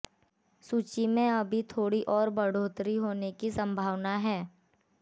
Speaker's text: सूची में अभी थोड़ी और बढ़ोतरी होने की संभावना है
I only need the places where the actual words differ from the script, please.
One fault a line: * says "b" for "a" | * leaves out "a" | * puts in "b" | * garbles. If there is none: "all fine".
all fine